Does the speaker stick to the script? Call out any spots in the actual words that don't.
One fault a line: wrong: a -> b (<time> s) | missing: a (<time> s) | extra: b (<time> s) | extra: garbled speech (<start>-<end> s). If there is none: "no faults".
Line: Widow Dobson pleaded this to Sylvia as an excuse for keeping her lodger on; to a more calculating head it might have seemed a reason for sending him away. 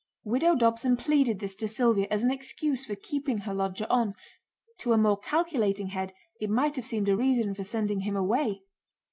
no faults